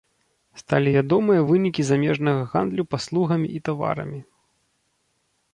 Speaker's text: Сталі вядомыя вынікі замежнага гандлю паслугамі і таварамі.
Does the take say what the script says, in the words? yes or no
yes